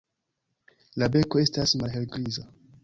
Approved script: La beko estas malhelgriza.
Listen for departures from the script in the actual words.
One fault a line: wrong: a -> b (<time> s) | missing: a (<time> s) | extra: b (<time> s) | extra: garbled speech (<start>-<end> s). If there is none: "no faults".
no faults